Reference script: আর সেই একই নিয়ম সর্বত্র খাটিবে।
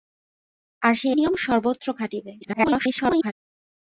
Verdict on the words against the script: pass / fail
fail